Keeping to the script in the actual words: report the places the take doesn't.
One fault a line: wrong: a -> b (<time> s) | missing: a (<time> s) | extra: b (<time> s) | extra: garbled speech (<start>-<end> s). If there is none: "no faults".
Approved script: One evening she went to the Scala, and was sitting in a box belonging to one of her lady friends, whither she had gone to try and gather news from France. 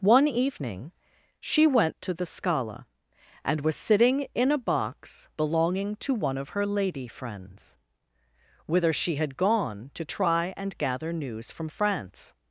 no faults